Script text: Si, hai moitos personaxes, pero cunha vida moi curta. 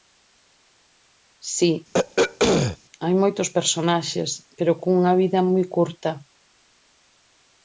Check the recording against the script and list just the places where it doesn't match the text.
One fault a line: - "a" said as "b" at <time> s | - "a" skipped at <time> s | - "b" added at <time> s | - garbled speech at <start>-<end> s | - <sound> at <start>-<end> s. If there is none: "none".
- throat clearing at 1.9-2.8 s